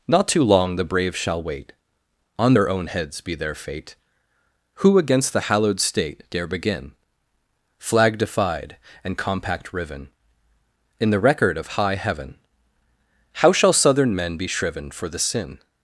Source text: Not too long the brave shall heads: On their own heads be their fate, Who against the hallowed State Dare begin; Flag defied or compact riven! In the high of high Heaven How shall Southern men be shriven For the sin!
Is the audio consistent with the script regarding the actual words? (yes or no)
no